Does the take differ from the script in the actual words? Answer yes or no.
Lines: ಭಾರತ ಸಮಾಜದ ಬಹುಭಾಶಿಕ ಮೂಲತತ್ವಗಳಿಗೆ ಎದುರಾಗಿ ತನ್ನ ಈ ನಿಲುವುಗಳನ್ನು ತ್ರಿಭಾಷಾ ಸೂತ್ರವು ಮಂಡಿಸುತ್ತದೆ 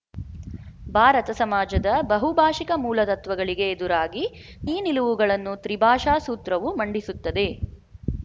yes